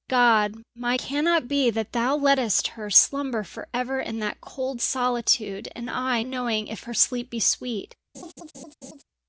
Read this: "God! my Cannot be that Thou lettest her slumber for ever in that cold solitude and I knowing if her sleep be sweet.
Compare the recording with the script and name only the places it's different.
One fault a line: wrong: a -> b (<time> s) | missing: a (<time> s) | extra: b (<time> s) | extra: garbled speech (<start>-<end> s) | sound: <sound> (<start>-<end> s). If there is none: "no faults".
sound: laugh (8.1-9.0 s)